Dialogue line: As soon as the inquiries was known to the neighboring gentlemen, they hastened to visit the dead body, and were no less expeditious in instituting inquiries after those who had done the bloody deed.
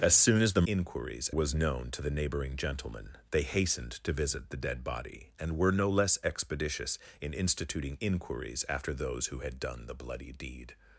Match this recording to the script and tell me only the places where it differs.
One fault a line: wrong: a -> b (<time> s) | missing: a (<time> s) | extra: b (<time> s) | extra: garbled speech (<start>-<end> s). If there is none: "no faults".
no faults